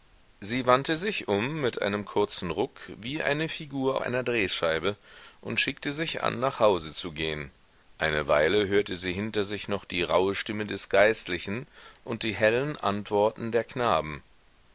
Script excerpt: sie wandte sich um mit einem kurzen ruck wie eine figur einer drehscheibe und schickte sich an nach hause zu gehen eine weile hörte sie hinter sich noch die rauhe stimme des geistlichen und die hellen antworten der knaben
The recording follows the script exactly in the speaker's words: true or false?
true